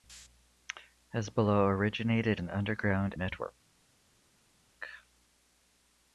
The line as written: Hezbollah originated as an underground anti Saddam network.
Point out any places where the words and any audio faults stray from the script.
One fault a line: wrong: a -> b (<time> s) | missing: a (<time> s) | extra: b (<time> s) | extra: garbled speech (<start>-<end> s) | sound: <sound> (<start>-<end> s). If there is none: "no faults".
missing: as (2.4 s)
missing: anti Saddam (3.1 s)